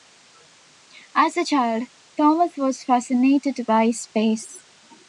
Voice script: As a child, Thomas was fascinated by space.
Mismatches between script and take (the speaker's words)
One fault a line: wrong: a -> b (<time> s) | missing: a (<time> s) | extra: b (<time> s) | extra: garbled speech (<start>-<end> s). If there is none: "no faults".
no faults